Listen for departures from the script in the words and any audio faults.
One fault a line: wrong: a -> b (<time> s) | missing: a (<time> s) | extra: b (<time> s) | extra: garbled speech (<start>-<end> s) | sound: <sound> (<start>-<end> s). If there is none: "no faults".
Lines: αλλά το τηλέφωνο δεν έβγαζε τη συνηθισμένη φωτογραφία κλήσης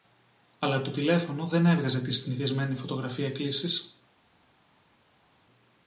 no faults